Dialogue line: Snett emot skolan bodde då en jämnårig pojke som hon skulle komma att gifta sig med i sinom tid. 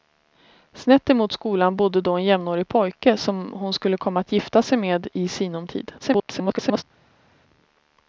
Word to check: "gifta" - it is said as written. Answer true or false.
true